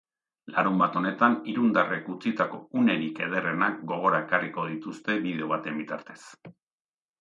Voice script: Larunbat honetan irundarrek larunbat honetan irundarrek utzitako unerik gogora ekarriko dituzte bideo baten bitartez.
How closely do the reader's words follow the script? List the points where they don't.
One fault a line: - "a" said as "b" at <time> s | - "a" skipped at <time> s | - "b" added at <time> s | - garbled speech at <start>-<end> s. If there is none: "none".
- "larunbat honetan irundarrek" skipped at 2.1 s
- "ederrenak" added at 3.3 s